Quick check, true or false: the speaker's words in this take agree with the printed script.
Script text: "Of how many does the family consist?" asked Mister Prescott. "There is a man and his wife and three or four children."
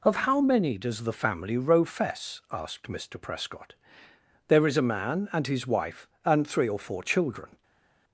false